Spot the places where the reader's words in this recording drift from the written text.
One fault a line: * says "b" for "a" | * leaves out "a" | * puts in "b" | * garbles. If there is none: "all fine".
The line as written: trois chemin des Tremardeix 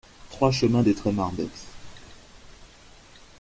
all fine